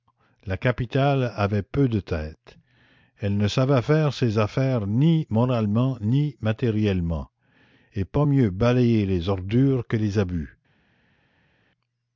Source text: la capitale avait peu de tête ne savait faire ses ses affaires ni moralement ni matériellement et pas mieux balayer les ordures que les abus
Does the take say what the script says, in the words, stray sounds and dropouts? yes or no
no